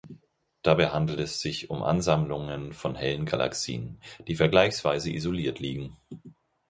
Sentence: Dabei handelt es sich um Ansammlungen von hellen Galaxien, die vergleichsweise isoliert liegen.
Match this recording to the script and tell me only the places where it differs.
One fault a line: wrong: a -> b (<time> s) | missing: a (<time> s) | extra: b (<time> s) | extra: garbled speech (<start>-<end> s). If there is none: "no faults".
no faults